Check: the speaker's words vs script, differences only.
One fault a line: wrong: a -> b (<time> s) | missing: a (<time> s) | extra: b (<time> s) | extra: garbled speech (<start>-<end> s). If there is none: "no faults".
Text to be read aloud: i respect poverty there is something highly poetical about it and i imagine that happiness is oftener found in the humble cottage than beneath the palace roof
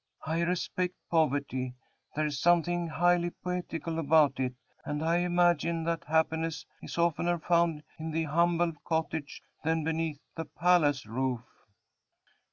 no faults